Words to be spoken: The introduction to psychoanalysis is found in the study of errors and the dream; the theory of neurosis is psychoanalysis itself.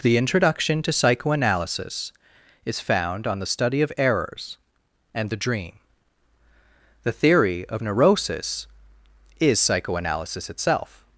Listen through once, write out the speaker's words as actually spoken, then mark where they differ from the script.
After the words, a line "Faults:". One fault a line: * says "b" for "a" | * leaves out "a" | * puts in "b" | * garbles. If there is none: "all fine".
The introduction to psychoanalysis is found on the study of errors and the dream; the theory of neurosis is psychoanalysis itself.
Faults:
* says "on" for "in"